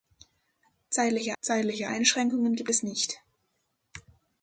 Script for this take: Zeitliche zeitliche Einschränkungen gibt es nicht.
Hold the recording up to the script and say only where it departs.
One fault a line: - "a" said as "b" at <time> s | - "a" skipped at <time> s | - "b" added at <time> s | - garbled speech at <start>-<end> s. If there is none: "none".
none